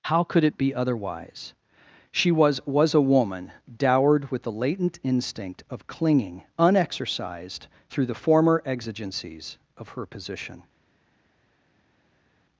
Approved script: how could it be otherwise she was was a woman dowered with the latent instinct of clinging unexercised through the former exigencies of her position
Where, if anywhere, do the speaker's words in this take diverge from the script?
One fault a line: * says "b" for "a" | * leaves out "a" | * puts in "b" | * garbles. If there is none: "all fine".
all fine